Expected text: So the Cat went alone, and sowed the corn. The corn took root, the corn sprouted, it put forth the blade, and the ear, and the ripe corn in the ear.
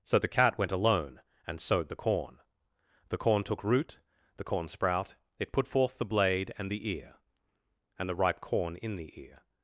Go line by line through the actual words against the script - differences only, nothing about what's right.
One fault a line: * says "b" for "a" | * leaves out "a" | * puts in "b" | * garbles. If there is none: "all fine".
* says "sprout" for "sprouted"